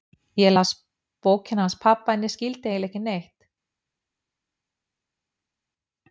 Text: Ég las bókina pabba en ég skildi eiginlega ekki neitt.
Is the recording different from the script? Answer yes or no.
yes